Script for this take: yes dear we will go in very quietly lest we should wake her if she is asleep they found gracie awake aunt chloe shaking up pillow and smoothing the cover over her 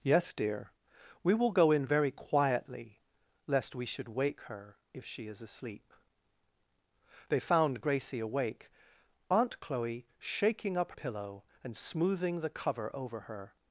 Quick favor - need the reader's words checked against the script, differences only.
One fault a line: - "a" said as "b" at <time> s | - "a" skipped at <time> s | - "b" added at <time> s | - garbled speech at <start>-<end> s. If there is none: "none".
none